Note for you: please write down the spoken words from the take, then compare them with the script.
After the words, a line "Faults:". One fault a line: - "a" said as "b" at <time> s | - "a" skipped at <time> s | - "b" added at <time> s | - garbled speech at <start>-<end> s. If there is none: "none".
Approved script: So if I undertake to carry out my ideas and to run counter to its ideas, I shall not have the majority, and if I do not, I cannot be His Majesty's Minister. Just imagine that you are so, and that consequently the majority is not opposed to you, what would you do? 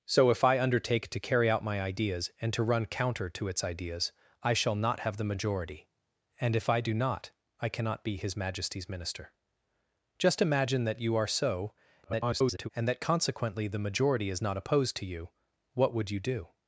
So if I undertake to carry out my ideas and to run counter to its ideas, I shall not have the majority, and if I do not, I cannot be His Majesty's Minister. Just imagine that you are so, [garbled] and that consequently the majority is not opposed to you, what would you do?
Faults:
- garbled speech at 12.0-12.7 s